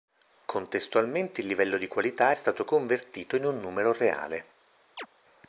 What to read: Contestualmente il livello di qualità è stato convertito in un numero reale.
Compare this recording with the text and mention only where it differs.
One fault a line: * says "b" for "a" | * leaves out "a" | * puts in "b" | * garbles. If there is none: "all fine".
all fine